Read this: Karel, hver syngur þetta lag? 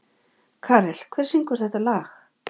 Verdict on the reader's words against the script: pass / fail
pass